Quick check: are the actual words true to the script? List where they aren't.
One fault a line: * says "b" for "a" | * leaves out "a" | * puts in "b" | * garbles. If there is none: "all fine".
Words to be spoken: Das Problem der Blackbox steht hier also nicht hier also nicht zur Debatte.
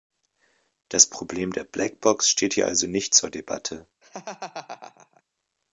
* leaves out "hier also nicht"